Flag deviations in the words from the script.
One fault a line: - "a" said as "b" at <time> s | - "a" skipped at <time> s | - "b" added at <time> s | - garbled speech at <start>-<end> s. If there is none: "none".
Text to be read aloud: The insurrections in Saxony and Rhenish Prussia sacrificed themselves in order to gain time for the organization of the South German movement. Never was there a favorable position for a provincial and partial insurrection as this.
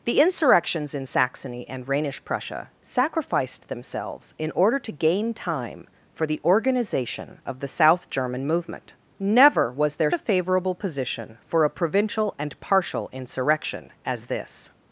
none